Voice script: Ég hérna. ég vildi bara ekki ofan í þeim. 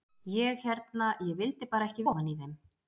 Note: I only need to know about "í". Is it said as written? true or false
true